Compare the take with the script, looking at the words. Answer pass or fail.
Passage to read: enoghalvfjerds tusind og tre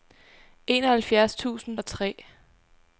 pass